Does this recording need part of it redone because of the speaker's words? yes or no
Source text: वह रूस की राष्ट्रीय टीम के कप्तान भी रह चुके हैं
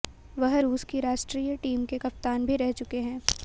no